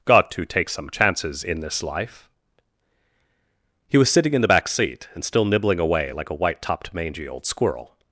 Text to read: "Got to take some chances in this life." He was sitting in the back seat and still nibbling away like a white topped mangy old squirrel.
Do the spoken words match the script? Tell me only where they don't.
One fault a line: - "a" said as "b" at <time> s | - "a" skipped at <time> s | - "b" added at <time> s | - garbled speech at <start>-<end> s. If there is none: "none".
none